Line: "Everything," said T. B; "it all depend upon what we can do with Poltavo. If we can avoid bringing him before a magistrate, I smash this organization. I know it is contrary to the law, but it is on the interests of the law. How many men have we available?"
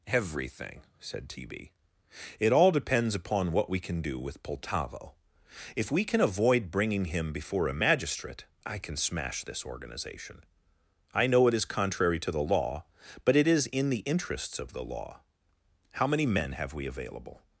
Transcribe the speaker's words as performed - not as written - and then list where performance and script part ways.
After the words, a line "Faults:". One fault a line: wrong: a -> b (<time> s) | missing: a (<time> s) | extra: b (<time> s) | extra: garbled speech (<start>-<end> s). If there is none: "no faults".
"Everything," said T. B; "it all depends upon what we can do with Poltavo. If we can avoid bringing him before a magistrate, I can smash this organization. I know it is contrary to the law, but it is in the interests of the law. How many men have we available?"
Faults:
wrong: depend -> depends (2.7 s)
extra: can (8.8 s)
wrong: on -> in (13.7 s)